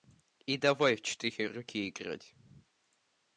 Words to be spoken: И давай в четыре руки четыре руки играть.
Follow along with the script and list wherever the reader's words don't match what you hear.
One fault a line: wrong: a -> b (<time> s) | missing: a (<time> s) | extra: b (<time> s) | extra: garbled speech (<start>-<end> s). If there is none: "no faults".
missing: четыре руки (1.9 s)